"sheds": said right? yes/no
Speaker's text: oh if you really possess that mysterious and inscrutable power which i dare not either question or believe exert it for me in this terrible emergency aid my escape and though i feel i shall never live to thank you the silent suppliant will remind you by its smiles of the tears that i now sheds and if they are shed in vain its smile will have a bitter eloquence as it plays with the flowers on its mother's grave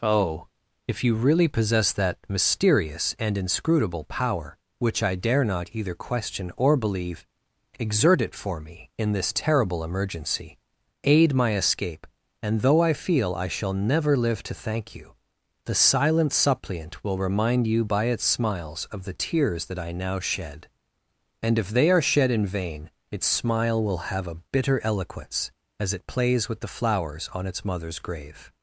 no